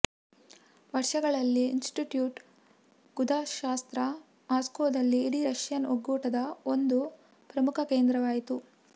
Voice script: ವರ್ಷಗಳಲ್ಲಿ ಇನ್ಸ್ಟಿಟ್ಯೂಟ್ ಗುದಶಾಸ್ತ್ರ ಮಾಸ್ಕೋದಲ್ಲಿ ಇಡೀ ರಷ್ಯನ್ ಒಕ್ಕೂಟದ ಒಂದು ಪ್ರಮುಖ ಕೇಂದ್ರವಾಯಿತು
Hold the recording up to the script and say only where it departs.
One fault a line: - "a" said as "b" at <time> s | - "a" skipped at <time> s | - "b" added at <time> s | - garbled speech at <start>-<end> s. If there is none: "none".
none